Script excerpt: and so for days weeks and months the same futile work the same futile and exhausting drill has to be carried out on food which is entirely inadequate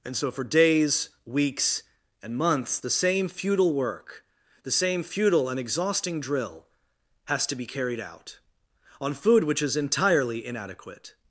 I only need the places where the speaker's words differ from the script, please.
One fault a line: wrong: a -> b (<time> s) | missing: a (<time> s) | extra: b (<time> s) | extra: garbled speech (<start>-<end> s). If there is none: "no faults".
no faults